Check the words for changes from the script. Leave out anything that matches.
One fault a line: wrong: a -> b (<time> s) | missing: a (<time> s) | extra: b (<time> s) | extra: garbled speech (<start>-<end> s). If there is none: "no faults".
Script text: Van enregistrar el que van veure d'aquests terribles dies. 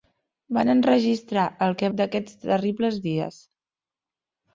missing: van veure (1.9 s)